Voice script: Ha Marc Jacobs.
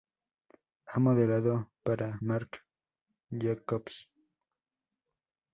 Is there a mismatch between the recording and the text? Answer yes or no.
yes